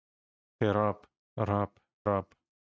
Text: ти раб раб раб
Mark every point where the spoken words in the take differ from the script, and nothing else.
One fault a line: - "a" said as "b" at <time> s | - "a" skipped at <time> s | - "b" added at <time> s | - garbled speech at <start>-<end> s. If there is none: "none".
none